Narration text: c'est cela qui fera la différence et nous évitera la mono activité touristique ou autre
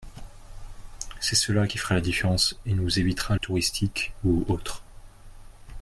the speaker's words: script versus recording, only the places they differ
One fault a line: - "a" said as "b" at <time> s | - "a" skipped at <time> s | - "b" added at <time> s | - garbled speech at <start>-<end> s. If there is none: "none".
- "la mono activité" skipped at 3.3 s